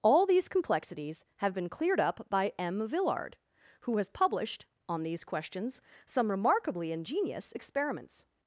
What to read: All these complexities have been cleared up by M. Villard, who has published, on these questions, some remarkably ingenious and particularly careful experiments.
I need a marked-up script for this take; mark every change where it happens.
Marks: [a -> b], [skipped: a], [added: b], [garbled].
All these complexities have been cleared up by M. Villard, who has published, on these questions, some remarkably ingenious [skipped: and particularly careful] experiments.